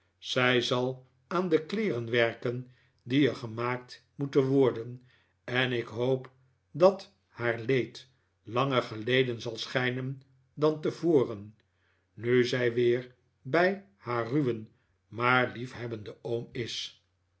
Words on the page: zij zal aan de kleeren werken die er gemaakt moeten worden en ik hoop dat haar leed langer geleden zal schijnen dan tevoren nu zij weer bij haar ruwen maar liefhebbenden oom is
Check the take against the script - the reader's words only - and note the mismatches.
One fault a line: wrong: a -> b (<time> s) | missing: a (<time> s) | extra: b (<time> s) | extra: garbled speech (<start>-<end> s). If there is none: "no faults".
no faults